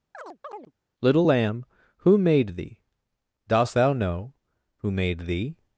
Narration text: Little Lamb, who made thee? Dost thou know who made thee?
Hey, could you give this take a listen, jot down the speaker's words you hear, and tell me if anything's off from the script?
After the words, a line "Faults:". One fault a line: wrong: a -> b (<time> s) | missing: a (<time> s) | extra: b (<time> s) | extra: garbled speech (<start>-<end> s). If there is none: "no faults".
Little Lamb, who made thee? Dost thou know who made thee?
Faults:
no faults